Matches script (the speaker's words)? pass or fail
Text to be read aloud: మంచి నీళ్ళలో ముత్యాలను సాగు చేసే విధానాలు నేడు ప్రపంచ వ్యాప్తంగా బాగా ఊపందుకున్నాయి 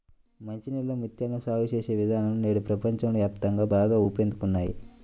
pass